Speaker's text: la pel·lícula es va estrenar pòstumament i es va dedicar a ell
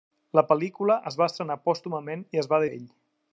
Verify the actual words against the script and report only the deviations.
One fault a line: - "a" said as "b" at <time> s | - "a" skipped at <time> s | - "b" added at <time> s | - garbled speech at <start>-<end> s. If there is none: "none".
- "dedicar" skipped at 2.6 s